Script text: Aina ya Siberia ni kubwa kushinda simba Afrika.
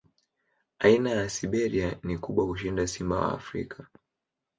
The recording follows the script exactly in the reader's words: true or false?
false